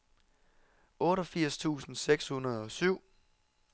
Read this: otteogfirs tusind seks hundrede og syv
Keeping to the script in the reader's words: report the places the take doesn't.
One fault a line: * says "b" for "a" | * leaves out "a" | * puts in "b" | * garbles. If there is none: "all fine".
all fine